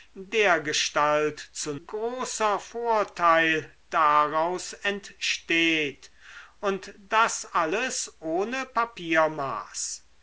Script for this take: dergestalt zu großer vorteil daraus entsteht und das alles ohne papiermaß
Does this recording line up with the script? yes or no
yes